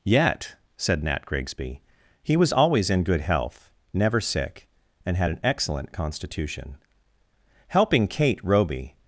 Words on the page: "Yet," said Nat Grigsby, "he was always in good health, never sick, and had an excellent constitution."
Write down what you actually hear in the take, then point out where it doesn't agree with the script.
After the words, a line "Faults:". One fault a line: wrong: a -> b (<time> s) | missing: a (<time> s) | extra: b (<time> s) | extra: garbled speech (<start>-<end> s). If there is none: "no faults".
"Yet," said Nat Grigsby, "he was always in good health, never sick, and had an excellent constitution." HELPING KATE ROBY
Faults:
extra: HELPING KATE ROBY (7.7 s)